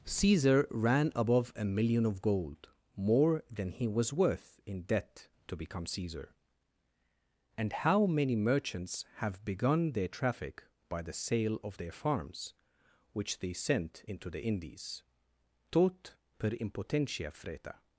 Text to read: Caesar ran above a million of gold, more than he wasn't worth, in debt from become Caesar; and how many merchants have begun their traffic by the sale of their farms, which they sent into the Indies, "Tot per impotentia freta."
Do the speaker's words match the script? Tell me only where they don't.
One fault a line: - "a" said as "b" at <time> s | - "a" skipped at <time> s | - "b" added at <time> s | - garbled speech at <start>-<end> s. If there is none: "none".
- "wasn't" said as "was" at 3.9 s
- "from" said as "to" at 5.5 s